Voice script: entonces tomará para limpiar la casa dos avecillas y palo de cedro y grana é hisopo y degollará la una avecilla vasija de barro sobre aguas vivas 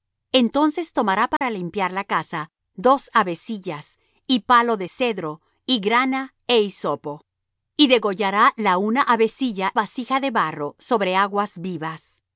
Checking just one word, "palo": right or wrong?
right